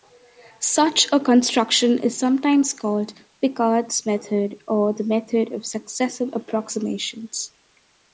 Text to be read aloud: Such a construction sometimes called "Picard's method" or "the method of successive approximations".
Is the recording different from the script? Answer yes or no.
yes